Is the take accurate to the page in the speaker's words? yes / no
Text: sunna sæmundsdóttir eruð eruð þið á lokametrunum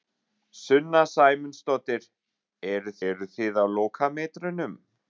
yes